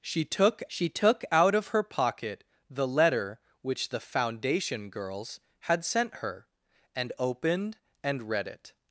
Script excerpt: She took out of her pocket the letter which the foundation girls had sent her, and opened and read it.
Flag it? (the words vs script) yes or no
yes